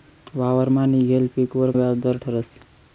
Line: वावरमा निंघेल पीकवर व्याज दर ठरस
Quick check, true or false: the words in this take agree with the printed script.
true